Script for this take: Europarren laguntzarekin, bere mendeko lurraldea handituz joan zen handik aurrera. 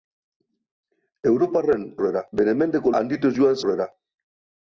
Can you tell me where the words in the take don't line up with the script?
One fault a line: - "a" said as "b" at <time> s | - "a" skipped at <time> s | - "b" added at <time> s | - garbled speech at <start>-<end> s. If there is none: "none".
- "laguntzarekin" said as "aurrera" at 2.0 s
- "lurraldea" skipped at 2.9 s
- "zen handik" skipped at 3.6 s